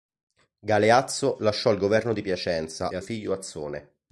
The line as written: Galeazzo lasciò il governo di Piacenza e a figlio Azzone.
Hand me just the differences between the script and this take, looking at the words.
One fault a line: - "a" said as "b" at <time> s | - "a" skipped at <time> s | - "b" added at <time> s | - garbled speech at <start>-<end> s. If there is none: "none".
none